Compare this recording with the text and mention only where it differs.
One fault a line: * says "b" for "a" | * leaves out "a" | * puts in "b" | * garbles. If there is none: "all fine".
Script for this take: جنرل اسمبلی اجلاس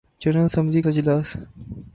all fine